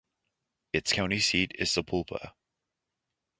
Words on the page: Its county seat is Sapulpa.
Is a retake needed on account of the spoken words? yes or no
no